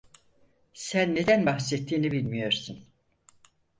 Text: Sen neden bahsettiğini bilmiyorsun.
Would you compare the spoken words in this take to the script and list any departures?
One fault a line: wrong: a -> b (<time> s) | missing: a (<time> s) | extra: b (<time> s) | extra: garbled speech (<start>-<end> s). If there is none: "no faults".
no faults